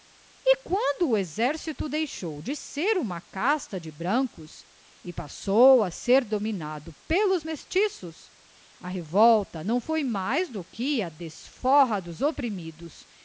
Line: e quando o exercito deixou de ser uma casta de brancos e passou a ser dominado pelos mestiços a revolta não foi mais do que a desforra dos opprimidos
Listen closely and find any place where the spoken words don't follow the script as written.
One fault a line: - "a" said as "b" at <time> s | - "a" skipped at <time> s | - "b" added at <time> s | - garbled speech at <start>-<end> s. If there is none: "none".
none